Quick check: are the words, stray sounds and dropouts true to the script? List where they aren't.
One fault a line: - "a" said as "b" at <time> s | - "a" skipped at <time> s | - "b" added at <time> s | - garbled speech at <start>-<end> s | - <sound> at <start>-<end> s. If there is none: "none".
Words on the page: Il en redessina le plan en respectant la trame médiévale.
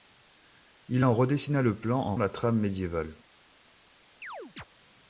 - "respectant" skipped at 2.1 s
- chirp at 4.2-4.6 s